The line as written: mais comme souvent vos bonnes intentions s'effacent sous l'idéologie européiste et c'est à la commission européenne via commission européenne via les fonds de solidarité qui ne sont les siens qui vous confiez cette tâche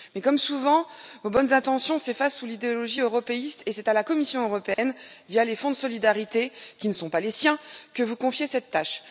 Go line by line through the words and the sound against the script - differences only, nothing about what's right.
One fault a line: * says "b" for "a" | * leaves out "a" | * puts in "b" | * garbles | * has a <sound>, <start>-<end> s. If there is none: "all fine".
* has a dropout, 4.7-4.8 s
* leaves out "commission européenne via"
* puts in "pas"
* says "que" for "qui"